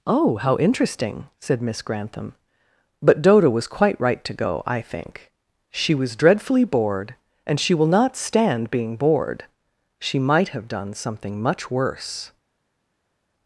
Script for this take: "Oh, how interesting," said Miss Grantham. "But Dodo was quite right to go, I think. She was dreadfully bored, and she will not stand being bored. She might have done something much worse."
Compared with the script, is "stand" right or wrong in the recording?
right